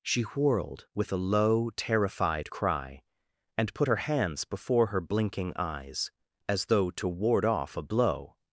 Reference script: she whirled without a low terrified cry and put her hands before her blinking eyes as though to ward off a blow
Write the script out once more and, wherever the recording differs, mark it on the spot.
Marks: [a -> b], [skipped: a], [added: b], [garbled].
she whirled [without -> with] a low terrified cry and put her hands before her blinking eyes as though to ward off a blow